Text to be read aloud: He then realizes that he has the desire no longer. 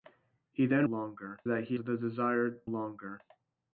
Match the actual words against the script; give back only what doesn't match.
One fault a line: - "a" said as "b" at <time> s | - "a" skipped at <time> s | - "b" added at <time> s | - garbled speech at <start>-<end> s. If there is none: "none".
- "realizes" said as "longer" at 0.8 s
- "has" skipped at 1.8 s
- "no" skipped at 2.6 s